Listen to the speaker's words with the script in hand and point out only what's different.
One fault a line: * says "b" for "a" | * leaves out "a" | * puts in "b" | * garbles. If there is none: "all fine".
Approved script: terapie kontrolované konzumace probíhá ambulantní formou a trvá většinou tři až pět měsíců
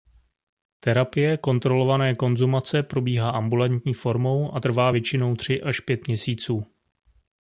all fine